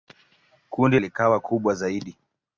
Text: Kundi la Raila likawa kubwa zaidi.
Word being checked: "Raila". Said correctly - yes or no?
no